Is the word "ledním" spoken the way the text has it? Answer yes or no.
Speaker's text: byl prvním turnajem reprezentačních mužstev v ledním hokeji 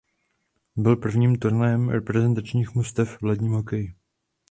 yes